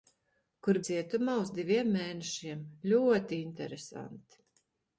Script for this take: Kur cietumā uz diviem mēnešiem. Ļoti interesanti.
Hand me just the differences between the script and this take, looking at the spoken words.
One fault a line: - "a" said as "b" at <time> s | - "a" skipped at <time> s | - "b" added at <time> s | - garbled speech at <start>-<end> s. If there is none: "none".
none